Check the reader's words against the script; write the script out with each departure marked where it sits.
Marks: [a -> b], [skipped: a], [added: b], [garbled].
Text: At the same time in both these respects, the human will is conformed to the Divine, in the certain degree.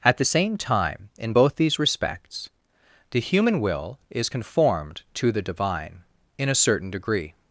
At the same time in both these respects, the human will is conformed to the Divine, in [the -> a] certain degree.